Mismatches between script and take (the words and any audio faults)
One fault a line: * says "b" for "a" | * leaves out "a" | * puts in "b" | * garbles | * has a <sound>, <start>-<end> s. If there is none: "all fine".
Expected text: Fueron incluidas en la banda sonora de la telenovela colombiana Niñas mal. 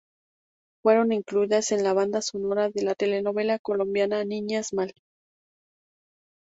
all fine